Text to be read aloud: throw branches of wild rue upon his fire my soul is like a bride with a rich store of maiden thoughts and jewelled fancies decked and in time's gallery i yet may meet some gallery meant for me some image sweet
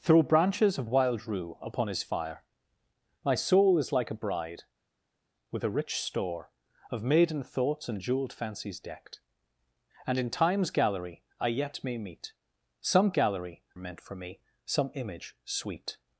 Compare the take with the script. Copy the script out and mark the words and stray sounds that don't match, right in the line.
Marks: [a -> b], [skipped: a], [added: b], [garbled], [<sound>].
throw branches of wild rue upon his fire my soul is like a bride with a rich store of maiden thoughts and jewelled fancies decked and in time's gallery i yet may meet some gallery meant for me some image sweet